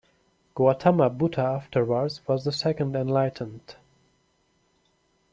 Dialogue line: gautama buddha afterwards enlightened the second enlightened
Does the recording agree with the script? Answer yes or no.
no